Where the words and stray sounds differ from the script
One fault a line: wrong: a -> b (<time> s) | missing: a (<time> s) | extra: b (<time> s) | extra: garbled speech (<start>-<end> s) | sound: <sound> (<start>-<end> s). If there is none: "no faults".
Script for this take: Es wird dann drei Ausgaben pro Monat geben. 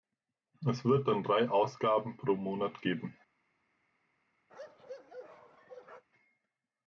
sound: bark (4.5-6.0 s)